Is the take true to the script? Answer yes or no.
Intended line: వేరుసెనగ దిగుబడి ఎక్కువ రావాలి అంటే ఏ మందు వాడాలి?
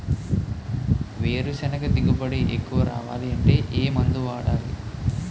yes